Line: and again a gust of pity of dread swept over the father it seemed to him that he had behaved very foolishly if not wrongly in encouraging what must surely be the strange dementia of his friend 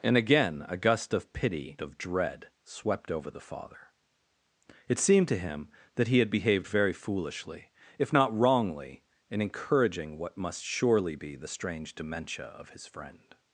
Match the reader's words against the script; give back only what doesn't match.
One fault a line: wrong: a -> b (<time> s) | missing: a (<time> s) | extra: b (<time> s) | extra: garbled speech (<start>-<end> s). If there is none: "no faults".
no faults